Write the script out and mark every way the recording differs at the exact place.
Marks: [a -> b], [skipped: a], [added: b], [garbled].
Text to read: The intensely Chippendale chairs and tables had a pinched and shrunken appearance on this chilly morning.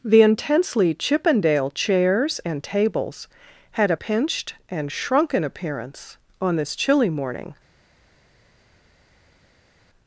The intensely Chippendale chairs and tables had a pinched and shrunken appearance on this chilly morning.